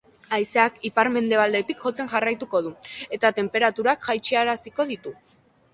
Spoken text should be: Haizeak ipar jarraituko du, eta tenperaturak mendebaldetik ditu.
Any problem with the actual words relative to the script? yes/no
yes